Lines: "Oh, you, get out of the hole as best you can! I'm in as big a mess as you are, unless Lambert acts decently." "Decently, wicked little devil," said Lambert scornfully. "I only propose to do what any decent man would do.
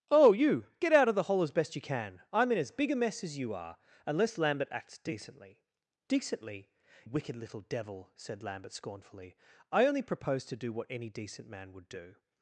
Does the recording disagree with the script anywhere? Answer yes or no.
no